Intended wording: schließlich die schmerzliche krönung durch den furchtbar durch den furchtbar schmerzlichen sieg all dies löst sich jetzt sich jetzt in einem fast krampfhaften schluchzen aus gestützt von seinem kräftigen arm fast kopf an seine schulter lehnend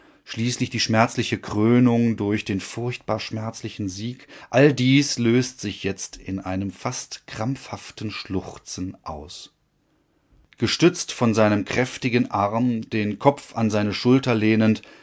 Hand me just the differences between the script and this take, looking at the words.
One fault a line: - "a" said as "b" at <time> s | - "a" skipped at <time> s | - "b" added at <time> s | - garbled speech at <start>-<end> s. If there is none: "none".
- "durch den furchtbar" skipped at 3.2 s
- "sich jetzt" skipped at 6.2 s
- "fast" said as "den" at 12.9 s